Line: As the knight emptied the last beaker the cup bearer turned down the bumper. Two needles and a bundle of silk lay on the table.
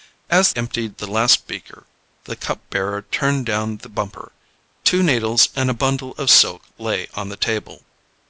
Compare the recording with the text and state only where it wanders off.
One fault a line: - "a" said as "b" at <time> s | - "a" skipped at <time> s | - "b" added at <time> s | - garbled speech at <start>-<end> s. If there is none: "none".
- "the knight" skipped at 0.5 s